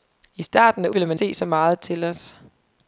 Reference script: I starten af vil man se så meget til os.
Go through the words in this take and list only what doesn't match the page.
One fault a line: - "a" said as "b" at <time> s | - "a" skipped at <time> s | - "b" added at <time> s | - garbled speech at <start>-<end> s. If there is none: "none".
none